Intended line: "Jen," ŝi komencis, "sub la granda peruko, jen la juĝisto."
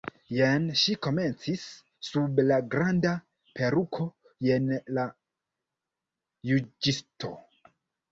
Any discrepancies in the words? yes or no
no